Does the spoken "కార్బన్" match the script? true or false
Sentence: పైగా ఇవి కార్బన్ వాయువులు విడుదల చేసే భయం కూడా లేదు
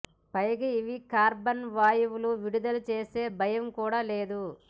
true